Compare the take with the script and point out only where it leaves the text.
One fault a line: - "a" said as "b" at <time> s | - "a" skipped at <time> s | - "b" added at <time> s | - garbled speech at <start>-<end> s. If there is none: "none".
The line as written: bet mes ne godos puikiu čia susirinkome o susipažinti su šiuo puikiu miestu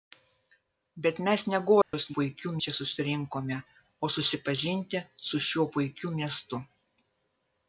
none